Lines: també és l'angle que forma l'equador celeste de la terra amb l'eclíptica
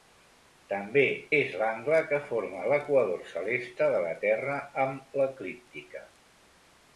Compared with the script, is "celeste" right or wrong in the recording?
right